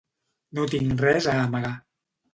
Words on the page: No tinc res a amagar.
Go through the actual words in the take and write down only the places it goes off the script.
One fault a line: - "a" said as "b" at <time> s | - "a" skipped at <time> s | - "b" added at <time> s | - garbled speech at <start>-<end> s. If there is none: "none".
none